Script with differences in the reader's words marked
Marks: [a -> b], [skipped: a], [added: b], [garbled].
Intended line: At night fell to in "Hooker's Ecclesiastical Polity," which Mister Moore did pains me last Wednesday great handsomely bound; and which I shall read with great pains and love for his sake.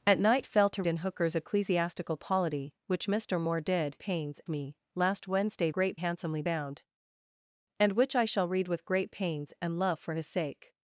At night fell to in "Hooker's Ecclesiastical Polity," which Mister Moore did pains me last Wednesday great handsomely bound; and which I shall read with great pains and love for his sake.